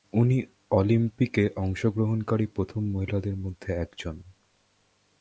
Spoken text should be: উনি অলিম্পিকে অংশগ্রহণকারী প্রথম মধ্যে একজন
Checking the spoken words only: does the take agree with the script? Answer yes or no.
no